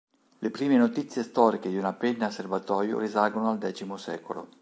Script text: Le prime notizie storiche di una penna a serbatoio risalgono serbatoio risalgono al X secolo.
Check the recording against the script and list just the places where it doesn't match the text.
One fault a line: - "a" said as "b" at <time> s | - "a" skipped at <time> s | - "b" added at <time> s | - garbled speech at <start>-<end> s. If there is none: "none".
- "serbatoio risalgono" skipped at 3.5 s